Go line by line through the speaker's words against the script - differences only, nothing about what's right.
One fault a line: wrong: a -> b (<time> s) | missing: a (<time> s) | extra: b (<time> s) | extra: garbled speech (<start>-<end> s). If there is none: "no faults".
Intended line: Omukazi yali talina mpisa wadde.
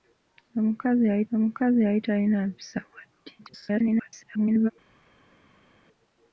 extra: omukazi yali (1.3 s)
extra: garbled speech (3.4-4.7 s)